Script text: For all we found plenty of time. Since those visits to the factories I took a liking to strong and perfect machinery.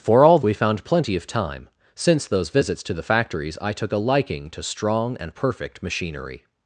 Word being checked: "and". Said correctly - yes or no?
yes